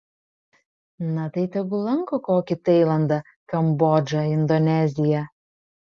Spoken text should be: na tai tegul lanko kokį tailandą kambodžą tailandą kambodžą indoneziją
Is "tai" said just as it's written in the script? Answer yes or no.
yes